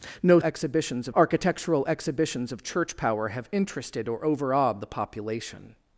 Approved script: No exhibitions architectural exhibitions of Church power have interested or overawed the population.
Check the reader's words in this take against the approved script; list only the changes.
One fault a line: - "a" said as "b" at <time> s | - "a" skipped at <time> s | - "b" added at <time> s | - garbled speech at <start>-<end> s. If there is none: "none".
none